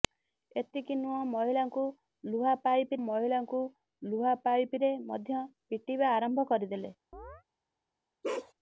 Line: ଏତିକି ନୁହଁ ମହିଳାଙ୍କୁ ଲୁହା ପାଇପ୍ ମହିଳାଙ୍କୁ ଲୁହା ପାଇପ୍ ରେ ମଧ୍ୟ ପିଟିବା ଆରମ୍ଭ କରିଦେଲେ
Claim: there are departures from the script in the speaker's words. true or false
false